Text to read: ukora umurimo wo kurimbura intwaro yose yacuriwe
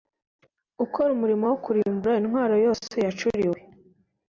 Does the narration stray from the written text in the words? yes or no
no